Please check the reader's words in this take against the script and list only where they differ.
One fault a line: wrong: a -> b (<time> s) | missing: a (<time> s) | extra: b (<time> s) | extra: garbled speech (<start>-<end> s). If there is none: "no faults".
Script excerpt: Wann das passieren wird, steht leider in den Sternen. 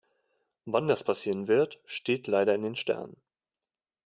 no faults